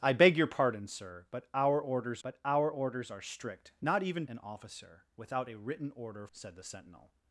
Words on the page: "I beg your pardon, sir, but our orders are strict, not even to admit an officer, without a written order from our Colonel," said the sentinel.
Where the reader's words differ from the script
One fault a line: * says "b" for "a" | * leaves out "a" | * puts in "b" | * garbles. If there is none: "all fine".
* puts in "but our orders"
* leaves out "to admit"
* leaves out "from our Colonel"